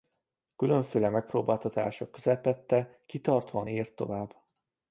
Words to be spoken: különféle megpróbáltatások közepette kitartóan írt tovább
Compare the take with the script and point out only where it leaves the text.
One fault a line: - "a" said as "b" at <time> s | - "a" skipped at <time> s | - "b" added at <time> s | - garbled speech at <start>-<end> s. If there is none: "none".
none